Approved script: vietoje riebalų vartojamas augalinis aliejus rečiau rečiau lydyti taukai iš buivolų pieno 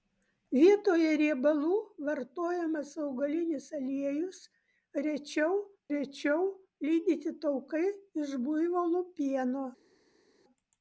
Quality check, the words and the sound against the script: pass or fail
pass